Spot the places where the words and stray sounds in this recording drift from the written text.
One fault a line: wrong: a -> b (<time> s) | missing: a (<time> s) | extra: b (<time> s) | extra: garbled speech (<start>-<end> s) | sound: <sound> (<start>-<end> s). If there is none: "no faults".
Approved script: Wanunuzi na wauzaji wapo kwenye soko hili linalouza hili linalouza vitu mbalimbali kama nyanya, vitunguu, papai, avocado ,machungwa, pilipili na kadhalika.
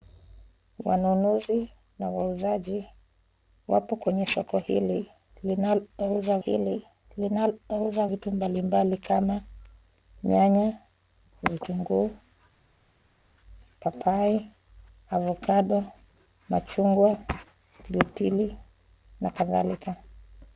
no faults